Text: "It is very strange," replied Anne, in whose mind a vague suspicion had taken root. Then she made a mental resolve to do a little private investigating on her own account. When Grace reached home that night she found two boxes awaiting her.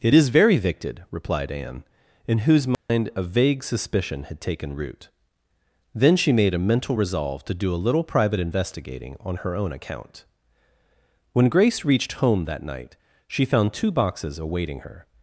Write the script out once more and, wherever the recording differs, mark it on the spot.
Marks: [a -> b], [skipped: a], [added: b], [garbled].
"It is very [strange," -> victed] replied Anne, in whose mind a vague suspicion had taken root. Then she made a mental resolve to do a little private investigating on her own account. When Grace reached home that night she found two boxes awaiting her.